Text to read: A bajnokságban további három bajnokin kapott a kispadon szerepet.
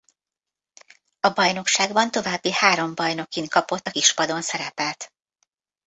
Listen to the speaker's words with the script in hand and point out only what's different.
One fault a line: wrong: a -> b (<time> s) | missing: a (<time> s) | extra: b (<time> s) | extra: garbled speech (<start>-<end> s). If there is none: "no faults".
no faults